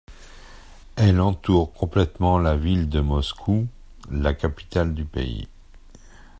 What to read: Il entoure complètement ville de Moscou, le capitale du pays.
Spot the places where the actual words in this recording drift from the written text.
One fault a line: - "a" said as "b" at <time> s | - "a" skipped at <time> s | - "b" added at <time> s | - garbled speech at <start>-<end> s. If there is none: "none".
- "Il" said as "Elle" at 0.9 s
- "la" added at 2.4 s
- "le" said as "la" at 4.1 s